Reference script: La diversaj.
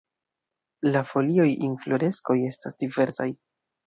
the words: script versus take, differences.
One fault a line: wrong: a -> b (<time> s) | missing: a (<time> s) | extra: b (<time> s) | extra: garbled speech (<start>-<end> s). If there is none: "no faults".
extra: folioj infloreskoj estas (1.1 s)